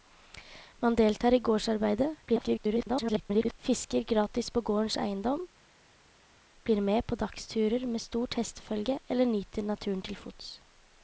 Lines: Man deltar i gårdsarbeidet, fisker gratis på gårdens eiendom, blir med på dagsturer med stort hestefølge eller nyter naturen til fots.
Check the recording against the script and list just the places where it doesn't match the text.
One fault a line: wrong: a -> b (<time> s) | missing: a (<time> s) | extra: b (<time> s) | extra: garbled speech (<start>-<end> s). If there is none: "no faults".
extra: garbled speech (2.3-3.6 s)